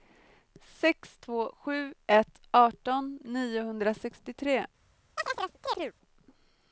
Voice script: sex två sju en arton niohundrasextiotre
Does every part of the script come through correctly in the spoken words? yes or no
no